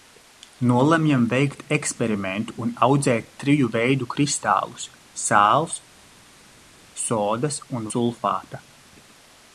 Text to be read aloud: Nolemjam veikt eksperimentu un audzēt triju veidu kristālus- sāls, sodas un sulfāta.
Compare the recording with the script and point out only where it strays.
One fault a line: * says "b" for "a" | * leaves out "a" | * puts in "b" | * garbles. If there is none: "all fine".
all fine